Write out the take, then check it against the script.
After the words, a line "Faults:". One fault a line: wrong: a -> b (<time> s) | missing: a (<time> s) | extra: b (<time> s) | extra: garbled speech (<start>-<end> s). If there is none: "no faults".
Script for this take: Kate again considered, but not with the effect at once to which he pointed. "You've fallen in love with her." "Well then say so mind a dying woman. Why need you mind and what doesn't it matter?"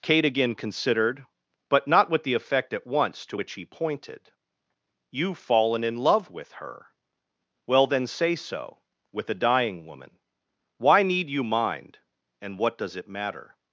Kate again considered, but not with the effect at once to which he pointed. "You've fallen in love with her." "Well then say so with a dying woman. Why need you mind and what does it matter?"
Faults:
wrong: mind -> with (9.1 s)
wrong: doesn't -> does (12.8 s)